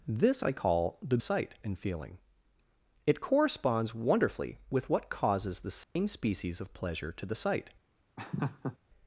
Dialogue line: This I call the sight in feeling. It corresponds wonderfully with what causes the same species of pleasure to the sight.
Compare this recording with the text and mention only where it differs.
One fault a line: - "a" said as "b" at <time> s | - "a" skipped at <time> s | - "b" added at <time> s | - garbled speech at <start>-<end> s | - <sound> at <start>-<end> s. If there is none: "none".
- dropout at 5.8-6.0 s
- laugh at 8.2-8.8 s